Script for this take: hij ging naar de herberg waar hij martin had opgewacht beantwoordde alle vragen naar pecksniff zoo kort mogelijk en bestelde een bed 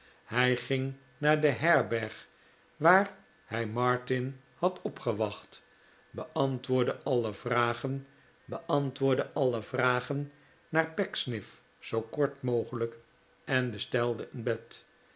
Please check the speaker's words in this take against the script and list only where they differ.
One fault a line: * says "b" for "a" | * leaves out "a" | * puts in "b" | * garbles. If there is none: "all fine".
* puts in "beantwoordde alle vragen"